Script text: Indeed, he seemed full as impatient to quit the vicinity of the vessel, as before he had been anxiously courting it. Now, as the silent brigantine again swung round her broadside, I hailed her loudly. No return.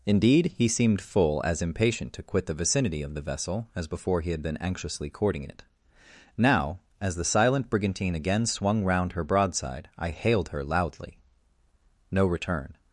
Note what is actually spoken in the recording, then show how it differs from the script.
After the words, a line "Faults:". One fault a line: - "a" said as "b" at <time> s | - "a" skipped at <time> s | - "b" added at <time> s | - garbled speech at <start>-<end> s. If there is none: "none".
Indeed, he seemed full as impatient to quit the vicinity of the vessel, as before he had been anxiously courting it. Now, as the silent brigantine again swung round her broadside, I hailed her loudly. No return.
Faults:
none